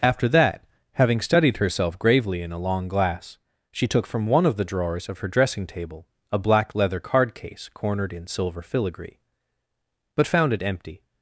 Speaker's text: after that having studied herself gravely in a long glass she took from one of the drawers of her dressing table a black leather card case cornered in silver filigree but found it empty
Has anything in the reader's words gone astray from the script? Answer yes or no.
no